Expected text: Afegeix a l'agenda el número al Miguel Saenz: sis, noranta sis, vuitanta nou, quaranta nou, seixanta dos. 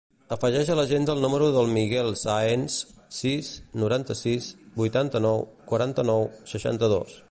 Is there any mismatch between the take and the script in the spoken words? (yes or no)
yes